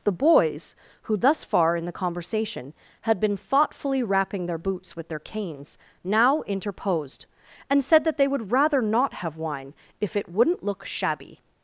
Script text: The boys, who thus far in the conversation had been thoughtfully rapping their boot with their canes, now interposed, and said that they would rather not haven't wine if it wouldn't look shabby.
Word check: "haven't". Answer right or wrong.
wrong